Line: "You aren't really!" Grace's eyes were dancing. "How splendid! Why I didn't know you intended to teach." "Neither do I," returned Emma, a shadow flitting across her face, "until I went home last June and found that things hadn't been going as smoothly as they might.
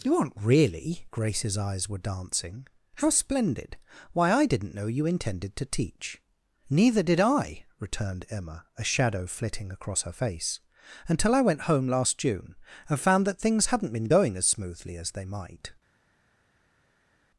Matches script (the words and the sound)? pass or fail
fail